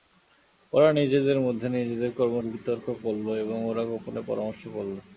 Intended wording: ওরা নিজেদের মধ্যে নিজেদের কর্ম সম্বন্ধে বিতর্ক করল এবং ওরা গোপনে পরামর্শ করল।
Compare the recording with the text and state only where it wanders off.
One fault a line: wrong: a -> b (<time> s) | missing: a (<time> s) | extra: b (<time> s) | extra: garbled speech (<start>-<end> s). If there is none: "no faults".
missing: সম্বন্ধে (2.4 s)